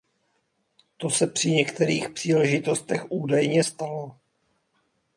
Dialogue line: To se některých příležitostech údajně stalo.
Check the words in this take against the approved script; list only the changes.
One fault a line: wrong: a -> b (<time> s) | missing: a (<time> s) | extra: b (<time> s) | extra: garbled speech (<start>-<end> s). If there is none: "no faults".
extra: při (1.3 s)